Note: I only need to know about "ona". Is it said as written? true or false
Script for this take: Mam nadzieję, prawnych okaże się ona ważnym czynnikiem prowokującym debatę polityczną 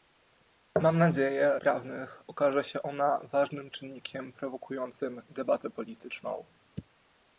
true